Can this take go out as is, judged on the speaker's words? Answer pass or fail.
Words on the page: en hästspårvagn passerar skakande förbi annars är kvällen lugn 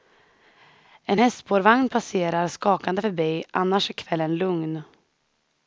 pass